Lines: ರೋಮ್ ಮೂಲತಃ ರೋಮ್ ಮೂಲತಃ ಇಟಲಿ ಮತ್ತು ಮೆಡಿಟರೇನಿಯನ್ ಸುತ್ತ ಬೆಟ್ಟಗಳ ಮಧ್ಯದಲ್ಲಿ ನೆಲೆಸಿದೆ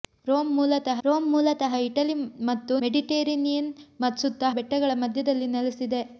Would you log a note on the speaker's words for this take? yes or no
no